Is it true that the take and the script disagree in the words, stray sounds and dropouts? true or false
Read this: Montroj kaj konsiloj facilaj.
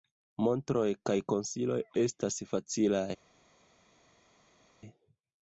true